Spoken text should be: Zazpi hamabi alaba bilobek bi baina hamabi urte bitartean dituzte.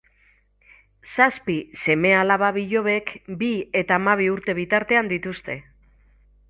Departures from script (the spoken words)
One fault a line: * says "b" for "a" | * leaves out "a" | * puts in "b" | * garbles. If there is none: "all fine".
* says "seme" for "hamabi"
* says "eta" for "baina"